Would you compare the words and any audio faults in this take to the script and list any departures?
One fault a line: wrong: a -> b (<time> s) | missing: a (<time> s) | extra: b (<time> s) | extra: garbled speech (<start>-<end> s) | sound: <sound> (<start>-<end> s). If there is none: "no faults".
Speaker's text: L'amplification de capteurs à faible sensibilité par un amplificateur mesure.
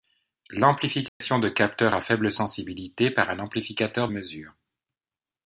sound: dropout (1.1-1.2 s)